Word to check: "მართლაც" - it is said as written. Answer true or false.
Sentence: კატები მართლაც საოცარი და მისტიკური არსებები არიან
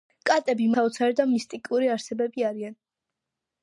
false